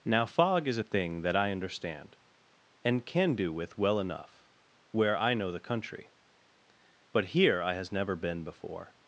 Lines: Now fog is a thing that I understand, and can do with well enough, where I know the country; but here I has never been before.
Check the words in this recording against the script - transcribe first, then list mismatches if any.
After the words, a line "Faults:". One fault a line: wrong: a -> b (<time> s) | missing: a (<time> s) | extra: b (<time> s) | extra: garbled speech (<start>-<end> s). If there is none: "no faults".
Now fog is a thing that I understand, and can do with well enough, where I know the country; but here I has never been before.
Faults:
no faults